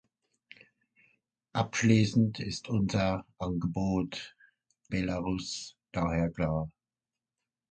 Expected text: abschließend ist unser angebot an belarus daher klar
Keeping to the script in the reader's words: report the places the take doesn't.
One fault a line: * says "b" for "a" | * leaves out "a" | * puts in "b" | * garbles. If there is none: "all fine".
* leaves out "an"